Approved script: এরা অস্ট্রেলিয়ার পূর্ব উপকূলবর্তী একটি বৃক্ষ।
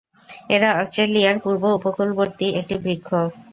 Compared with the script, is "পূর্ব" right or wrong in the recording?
right